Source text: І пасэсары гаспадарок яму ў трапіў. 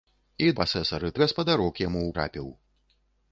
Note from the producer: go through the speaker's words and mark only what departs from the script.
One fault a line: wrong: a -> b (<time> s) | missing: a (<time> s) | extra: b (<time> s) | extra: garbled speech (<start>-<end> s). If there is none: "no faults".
no faults